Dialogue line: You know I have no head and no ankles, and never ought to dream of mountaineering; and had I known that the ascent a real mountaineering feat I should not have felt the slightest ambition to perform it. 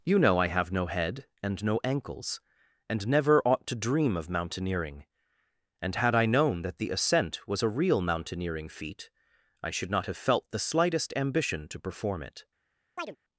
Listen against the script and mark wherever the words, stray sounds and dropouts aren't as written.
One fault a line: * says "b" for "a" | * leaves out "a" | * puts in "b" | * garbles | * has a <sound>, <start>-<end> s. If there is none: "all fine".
* puts in "was"
* has a chirp, 13.0-13.2 s